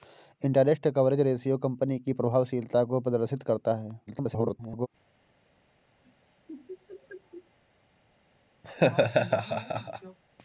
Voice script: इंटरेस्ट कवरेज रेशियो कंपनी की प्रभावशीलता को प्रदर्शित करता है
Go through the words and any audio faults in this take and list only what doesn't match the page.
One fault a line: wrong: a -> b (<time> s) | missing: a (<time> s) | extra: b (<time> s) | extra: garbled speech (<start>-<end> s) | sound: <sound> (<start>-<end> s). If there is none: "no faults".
extra: garbled speech (4.1-4.9 s)
sound: laugh (6.0-7.6 s)
sound: laugh (8.6-10.2 s)